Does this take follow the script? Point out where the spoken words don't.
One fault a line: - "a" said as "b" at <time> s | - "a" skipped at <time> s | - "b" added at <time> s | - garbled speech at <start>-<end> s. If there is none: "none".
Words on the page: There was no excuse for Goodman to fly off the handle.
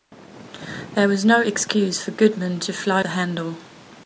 - "off" skipped at 3.0 s